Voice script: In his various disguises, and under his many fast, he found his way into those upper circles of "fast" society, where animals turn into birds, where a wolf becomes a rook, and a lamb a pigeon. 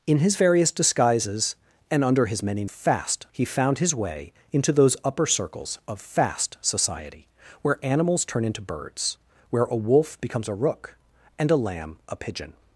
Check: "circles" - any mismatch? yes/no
no